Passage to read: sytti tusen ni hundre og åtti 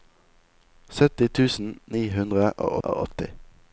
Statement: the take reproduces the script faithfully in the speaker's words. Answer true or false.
false